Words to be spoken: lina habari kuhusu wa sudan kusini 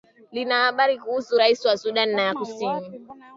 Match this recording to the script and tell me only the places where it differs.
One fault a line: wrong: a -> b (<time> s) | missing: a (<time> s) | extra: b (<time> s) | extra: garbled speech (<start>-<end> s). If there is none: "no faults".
extra: rais (1.4 s)
extra: ya (2.2 s)